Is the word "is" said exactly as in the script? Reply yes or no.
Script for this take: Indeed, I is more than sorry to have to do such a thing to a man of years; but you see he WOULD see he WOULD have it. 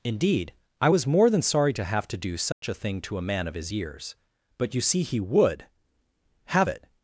no